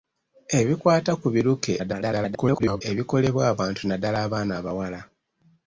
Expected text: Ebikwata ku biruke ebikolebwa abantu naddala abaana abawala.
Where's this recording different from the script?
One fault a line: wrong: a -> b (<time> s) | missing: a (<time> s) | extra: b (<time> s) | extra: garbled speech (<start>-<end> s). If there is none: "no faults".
extra: garbled speech (1.8-2.8 s)